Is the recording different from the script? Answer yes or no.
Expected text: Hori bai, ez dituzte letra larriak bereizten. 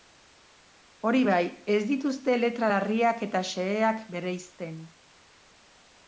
yes